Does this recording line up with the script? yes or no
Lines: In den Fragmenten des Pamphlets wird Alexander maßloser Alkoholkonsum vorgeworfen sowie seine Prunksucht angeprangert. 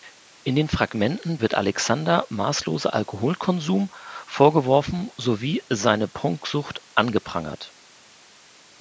no